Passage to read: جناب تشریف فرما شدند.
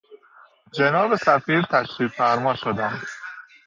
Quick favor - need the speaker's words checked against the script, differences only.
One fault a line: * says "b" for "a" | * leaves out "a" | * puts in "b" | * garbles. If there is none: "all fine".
* puts in "سفیر"